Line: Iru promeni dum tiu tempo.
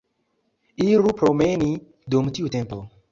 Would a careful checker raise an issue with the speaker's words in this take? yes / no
no